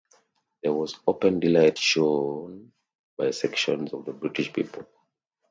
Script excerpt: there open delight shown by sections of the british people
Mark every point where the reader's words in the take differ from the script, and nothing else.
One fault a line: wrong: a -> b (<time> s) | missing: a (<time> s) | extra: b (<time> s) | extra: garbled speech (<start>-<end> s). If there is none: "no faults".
extra: was (0.7 s)